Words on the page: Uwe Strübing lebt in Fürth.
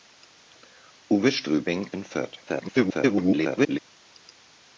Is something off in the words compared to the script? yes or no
yes